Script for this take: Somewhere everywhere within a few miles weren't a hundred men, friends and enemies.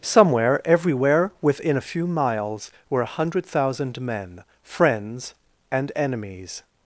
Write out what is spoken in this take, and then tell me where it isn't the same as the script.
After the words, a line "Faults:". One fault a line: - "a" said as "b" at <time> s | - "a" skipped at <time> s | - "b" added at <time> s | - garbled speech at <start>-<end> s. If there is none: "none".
Somewhere everywhere within a few miles were a hundred thousand men, friends and enemies.
Faults:
- "weren't" said as "were" at 2.9 s
- "thousand" added at 3.5 s